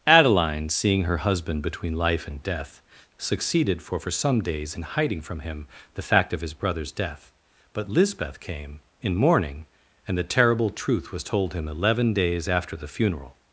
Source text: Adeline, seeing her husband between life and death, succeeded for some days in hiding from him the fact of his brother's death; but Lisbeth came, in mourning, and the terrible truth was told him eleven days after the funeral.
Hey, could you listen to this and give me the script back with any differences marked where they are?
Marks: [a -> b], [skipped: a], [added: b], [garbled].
Adeline, seeing her husband between life and death, succeeded for [added: for] some days in hiding from him the fact of his brother's death; but Lisbeth came, in mourning, and the terrible truth was told him eleven days after the funeral.